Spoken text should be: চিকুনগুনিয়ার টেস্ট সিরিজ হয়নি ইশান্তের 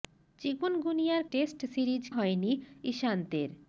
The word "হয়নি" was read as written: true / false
true